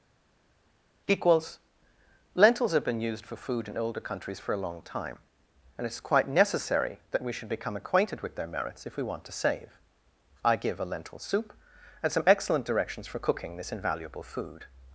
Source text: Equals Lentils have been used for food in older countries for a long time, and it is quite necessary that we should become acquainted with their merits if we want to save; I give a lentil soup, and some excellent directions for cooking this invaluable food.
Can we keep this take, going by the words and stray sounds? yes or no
yes